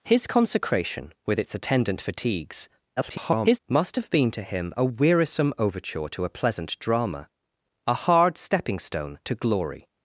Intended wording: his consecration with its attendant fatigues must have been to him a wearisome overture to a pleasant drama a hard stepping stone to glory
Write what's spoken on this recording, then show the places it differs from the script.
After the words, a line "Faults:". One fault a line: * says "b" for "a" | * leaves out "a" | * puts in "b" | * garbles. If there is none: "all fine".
his consecration with its attendant fatigues [garbled] must have been to him a wearisome overture to a pleasant drama a hard stepping stone to glory
Faults:
* garbles